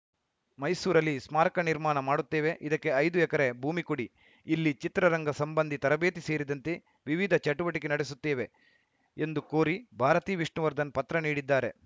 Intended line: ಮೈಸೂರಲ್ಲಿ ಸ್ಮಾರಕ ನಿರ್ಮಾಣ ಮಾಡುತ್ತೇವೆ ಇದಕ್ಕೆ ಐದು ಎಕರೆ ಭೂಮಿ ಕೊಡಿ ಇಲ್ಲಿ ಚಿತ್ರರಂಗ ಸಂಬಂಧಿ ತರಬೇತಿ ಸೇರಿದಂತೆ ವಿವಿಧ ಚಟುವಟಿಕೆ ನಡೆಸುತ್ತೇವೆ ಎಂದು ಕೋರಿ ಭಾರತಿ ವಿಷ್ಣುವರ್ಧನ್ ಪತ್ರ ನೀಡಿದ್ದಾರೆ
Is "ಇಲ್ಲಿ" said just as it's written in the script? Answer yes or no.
yes